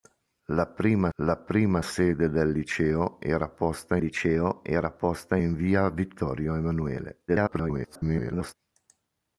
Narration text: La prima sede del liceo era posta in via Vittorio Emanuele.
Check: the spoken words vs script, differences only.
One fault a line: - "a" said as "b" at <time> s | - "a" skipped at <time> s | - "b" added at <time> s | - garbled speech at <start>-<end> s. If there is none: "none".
- "la prima" added at 1.1 s
- "liceo era posta" added at 4.0 s
- garbled speech at 7.3-8.5 s